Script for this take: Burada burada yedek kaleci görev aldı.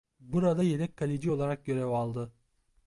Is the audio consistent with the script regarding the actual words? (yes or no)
no